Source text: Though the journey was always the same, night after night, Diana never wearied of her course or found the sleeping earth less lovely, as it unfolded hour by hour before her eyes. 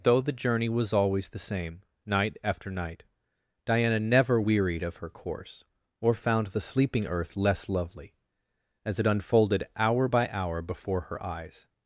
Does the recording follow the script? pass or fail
pass